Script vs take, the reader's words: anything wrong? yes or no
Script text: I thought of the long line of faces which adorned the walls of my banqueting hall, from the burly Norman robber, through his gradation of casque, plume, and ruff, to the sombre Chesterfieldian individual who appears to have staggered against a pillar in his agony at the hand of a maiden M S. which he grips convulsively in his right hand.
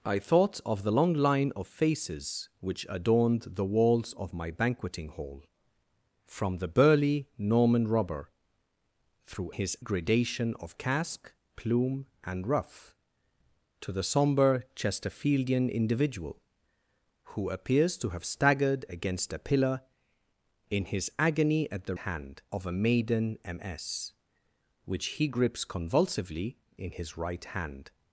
no